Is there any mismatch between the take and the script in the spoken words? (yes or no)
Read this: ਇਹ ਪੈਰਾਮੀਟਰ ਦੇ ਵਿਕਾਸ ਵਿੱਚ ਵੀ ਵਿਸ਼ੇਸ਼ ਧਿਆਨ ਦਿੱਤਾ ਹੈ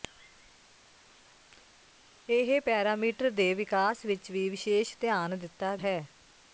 no